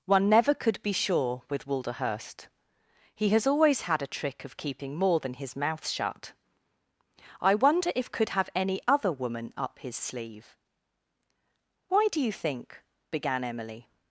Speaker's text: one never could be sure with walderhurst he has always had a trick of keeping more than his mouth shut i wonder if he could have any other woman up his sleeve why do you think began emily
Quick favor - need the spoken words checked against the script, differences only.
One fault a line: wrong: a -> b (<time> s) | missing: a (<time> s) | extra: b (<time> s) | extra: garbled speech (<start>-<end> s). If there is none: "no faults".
missing: he (8.1 s)